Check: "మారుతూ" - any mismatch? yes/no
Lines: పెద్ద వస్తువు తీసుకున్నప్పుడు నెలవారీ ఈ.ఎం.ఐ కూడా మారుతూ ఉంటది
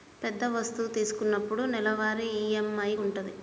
yes